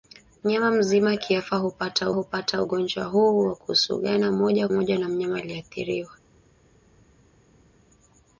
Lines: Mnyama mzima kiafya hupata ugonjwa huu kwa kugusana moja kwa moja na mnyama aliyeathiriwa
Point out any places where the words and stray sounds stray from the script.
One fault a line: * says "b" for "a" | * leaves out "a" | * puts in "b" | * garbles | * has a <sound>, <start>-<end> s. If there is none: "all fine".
* puts in "hupata"
* leaves out "kwa"